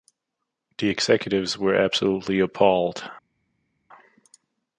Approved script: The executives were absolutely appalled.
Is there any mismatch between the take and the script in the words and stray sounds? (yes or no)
no